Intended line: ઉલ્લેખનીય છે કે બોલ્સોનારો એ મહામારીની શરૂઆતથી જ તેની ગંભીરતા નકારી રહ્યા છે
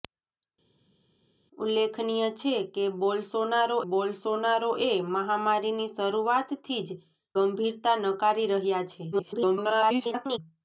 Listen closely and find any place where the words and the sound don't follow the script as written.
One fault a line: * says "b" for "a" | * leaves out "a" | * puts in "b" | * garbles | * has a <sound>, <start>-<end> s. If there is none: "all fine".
* puts in "બોલ્સોનારો"
* leaves out "તેની"
* garbles